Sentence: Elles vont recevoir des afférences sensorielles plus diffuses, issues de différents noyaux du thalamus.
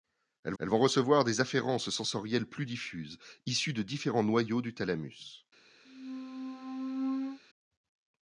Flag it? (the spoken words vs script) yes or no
yes